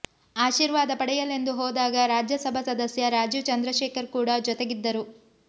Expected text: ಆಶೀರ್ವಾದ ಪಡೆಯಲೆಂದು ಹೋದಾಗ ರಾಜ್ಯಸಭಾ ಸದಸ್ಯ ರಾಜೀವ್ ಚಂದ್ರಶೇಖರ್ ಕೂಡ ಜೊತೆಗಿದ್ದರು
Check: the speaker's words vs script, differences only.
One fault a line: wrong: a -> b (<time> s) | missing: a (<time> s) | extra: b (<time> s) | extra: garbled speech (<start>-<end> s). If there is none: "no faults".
no faults